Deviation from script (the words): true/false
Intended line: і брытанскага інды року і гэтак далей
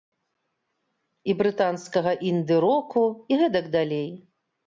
false